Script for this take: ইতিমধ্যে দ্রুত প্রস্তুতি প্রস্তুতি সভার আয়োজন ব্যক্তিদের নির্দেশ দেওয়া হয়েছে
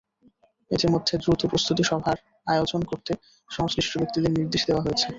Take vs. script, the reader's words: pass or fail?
fail